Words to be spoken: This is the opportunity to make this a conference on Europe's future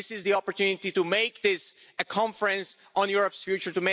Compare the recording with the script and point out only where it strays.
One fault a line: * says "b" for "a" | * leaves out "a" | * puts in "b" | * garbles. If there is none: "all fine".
all fine